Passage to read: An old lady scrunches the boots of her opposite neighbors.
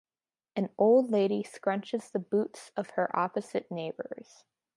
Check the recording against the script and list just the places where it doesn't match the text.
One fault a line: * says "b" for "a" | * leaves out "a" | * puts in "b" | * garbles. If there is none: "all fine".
all fine